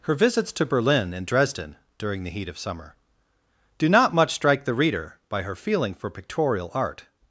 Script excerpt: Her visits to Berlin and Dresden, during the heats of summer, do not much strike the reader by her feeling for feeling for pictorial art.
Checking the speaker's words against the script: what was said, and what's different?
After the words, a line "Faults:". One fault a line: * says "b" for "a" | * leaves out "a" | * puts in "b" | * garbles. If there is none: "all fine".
Her visits to Berlin and Dresden, during the heat of summer, do not much strike the reader by her feeling for pictorial art.
Faults:
* says "heat" for "heats"
* leaves out "feeling for"